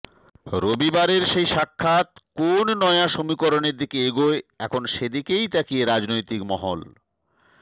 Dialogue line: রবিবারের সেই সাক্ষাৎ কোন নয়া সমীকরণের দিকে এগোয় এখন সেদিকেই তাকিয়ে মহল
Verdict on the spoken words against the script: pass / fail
fail